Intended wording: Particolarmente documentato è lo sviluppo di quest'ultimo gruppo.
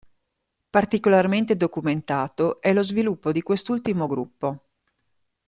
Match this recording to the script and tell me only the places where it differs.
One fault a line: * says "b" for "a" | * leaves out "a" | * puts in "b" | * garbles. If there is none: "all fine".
all fine